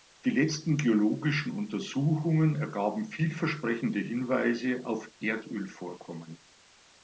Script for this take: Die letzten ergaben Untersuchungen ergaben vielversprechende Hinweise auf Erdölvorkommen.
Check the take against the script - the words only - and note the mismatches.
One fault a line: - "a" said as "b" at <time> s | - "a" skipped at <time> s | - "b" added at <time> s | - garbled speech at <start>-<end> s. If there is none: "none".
- "ergaben" said as "geologischen" at 0.8 s